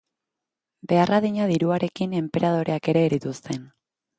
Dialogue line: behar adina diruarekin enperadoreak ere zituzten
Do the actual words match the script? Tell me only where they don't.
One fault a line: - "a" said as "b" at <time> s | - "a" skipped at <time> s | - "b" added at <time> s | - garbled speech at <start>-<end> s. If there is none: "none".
none